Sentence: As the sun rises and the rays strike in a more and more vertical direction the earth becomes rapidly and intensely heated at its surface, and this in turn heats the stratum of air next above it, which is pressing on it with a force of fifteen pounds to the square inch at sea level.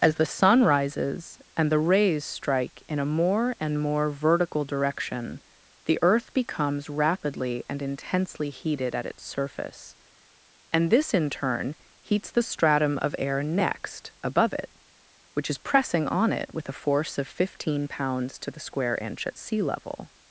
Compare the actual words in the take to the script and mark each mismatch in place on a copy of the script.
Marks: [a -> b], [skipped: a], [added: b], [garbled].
As the sun rises and the rays strike in a more and more vertical direction the earth becomes rapidly and intensely heated at its surface, and this in turn heats the stratum of air next above it, which is pressing on it with a force of fifteen pounds to the square inch at sea level.